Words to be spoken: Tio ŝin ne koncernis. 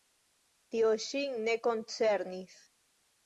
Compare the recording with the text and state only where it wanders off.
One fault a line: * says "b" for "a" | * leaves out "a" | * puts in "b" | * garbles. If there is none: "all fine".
all fine